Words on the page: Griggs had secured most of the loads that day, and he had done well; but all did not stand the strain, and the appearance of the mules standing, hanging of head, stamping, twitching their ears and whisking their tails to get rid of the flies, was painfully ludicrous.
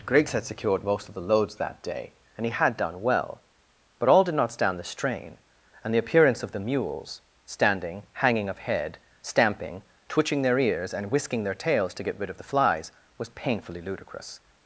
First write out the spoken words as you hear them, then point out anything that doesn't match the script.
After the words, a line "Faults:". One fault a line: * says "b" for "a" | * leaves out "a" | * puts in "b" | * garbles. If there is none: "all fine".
Griggs had secured most of the loads that day, and he had done well; but all did not stand the strain, and the appearance of the mules standing, hanging of head, stamping, twitching their ears and whisking their tails to get rid of the flies, was painfully ludicrous.
Faults:
all fine